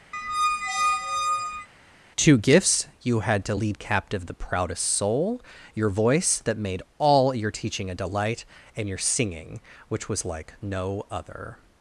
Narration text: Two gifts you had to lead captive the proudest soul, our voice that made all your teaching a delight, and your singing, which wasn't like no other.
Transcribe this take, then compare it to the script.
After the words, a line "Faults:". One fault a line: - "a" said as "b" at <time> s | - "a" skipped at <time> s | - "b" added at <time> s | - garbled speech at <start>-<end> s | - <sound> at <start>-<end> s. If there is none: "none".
Two gifts you had to lead captive the proudest soul, your voice that made all your teaching a delight, and your singing, which was like no other.
Faults:
- squeak at 0.1-1.7 s
- "our" said as "your" at 5.7 s
- "wasn't" said as "was" at 10.1 s